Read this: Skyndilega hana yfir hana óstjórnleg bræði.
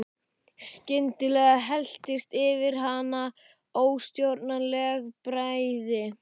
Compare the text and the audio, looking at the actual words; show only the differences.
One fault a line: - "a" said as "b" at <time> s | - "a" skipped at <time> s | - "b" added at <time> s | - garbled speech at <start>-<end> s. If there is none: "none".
- "hana" said as "helltist" at 1.6 s